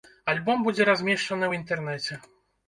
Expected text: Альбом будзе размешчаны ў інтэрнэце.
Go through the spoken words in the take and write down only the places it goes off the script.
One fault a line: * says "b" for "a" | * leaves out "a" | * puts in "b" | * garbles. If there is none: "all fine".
all fine